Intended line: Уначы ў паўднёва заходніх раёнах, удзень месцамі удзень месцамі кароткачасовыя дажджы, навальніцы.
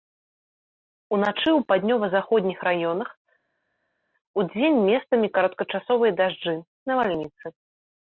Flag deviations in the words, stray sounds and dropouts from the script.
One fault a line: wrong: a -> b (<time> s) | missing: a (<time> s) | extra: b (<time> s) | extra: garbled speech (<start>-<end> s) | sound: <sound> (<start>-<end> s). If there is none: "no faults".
missing: удзень месцамі (5.3 s)